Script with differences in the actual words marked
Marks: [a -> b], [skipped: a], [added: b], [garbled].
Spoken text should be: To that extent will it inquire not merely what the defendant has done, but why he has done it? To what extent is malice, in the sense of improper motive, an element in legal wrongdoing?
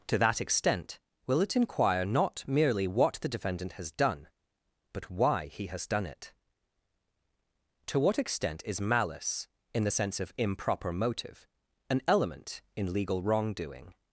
To that extent will it inquire not merely what the defendant has done, but why he has done it? To what extent is malice, in the sense of improper motive, an element in legal wrongdoing?